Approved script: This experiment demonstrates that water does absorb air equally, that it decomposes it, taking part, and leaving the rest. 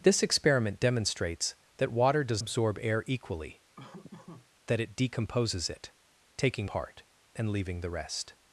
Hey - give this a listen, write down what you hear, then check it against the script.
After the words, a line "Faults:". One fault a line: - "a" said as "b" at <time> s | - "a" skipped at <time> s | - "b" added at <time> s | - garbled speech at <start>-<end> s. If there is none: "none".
This experiment demonstrates that water does absorb air equally, that it decomposes it, taking part, and leaving the rest.
Faults:
none